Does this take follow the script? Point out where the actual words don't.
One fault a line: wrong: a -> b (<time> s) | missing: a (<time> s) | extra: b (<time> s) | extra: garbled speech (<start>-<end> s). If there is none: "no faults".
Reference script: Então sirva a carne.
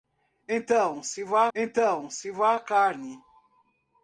extra: então sirva (1.5 s)